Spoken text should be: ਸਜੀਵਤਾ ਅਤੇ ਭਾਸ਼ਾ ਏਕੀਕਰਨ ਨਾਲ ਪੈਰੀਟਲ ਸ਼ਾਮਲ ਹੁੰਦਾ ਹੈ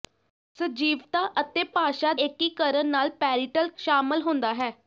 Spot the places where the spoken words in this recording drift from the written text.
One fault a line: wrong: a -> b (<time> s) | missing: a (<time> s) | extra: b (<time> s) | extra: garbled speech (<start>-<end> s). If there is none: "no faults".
no faults